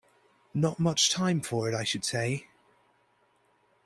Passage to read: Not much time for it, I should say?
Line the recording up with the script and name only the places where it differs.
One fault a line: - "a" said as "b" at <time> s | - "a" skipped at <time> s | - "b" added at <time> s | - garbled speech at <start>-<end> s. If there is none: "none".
none